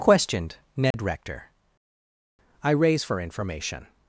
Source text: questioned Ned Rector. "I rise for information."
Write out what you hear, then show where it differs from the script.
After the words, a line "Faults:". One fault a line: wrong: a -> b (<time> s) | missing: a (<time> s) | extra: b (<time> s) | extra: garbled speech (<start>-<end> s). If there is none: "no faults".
questioned Ned Rector. "I raise for information."
Faults:
wrong: rise -> raise (2.7 s)